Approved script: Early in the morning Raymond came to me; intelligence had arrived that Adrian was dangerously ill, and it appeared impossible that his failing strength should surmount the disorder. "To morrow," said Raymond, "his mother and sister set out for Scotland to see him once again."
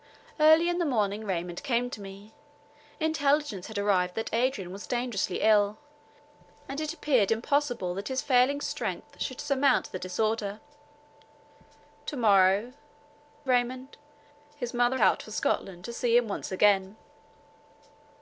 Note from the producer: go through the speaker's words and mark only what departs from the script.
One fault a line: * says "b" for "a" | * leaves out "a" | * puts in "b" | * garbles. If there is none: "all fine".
* leaves out "said"
* leaves out "and sister set"